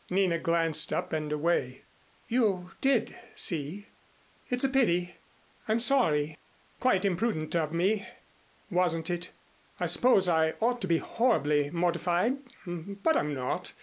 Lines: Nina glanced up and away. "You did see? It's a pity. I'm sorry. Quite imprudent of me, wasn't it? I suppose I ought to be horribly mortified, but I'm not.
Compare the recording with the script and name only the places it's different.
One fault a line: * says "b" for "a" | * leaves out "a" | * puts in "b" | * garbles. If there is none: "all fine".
all fine